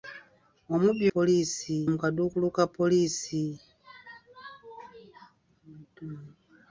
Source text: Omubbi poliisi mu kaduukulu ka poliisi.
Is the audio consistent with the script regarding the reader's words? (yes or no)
yes